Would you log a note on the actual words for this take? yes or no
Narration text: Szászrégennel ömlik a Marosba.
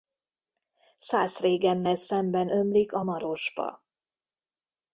yes